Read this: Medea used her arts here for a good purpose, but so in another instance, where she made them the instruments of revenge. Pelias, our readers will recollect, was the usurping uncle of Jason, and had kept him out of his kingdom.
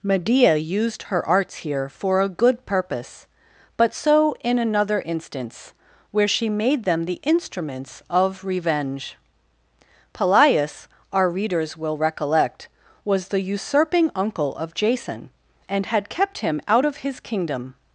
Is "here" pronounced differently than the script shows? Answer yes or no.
no